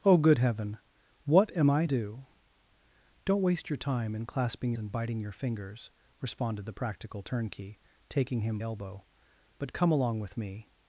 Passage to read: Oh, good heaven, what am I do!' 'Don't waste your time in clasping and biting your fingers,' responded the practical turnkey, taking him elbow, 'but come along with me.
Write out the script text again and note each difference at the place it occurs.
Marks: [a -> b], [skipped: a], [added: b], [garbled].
Oh, good heaven, what am I do!' 'Don't waste your time in clasping and biting your fingers,' responded the practical turnkey, taking him elbow, 'but come along with me.